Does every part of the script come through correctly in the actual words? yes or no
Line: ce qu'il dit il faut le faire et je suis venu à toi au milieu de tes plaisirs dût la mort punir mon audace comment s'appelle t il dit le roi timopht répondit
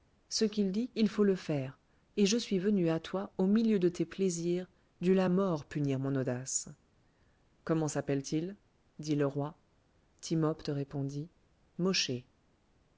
yes